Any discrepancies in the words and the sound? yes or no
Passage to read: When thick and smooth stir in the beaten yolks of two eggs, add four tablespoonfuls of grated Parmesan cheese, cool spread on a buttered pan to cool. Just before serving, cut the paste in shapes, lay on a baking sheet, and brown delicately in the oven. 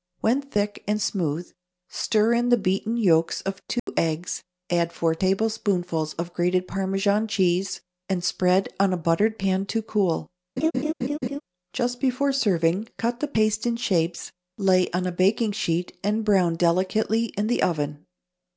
yes